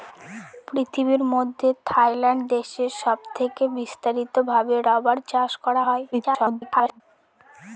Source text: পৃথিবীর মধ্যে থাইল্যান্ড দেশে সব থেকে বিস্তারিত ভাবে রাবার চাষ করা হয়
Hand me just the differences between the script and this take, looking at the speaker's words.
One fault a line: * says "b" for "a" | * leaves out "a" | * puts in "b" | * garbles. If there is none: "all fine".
* garbles